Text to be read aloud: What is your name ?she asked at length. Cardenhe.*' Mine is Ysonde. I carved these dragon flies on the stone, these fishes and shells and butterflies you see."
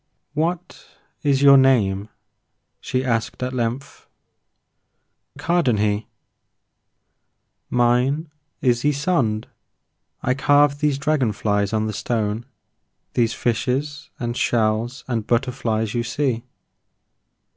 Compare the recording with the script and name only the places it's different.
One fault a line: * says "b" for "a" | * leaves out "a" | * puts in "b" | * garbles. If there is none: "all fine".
all fine